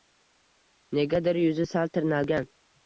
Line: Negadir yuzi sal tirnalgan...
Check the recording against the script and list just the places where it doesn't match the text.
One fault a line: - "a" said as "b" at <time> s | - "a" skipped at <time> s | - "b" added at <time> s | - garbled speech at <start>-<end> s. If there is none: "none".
none